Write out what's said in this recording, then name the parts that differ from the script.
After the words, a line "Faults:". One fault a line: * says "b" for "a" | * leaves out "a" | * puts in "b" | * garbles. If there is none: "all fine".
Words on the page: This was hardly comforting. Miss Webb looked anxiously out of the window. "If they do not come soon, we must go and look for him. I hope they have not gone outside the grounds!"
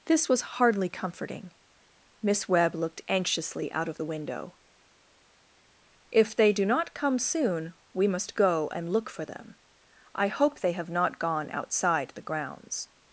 This was hardly comforting. Miss Webb looked anxiously out of the window. "If they do not come soon, we must go and look for them. I hope they have not gone outside the grounds!"
Faults:
* says "them" for "him"